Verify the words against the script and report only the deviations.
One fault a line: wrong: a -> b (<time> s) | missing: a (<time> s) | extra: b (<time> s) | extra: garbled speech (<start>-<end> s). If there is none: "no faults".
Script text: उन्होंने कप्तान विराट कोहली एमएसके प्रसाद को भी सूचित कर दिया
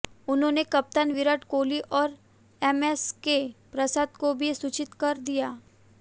extra: और (1.9 s)